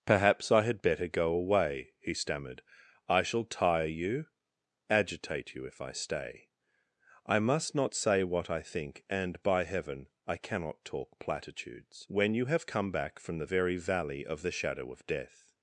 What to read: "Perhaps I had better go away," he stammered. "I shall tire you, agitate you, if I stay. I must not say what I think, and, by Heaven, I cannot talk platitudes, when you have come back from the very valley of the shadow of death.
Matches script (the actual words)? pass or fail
pass